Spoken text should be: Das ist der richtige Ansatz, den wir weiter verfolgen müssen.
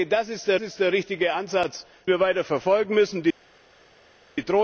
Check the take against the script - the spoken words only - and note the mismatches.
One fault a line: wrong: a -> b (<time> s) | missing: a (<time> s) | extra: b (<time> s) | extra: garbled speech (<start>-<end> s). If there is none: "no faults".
extra: ist der (0.6 s)
missing: den (1.8 s)